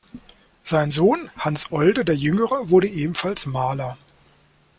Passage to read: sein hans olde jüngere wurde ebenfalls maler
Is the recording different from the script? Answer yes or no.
yes